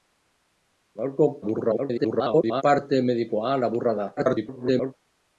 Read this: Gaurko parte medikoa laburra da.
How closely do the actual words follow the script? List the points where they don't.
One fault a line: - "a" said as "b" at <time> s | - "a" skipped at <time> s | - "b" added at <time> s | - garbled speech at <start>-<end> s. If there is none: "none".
- garbled speech at 1.4-2.6 s
- garbled speech at 4.2-4.9 s